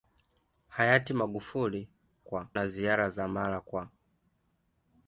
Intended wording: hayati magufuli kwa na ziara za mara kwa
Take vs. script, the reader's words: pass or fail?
pass